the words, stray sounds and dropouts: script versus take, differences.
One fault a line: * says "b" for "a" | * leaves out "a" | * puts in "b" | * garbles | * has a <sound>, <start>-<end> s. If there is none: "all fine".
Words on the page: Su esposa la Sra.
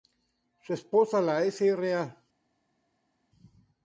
all fine